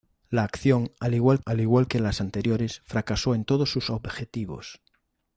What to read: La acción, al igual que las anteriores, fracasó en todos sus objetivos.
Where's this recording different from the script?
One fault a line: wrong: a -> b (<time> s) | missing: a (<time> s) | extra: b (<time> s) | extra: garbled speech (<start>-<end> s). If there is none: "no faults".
extra: al igual (1.4 s)